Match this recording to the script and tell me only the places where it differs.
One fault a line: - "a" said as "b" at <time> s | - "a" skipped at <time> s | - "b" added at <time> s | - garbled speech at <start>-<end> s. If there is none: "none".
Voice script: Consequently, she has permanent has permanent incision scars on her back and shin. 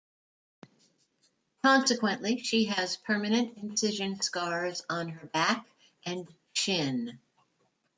- "has permanent" skipped at 3.6 s